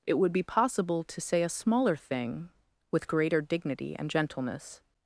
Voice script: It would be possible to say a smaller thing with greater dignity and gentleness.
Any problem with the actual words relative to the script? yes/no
no